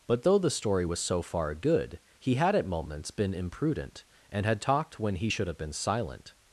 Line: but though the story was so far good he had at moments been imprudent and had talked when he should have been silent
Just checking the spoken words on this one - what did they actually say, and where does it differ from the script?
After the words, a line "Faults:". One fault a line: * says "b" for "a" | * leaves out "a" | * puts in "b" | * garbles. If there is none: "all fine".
but though the story was so far good he had at moments been imprudent and had talked when he should have been silent
Faults:
all fine